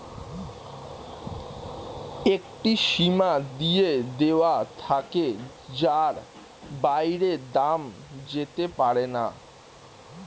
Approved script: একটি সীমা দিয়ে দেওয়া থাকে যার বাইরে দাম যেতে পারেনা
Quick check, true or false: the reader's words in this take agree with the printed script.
true